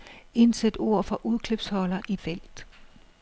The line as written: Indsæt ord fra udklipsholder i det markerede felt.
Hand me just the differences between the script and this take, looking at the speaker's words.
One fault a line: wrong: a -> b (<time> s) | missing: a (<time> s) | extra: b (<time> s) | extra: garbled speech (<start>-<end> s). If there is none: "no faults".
missing: det markerede (2.2 s)